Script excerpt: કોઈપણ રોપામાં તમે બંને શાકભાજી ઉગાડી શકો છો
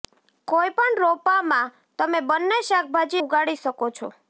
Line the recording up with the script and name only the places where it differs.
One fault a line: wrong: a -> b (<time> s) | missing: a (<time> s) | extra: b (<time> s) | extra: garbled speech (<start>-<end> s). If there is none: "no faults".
no faults